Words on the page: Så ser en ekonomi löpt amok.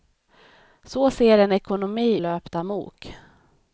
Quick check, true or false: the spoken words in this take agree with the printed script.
true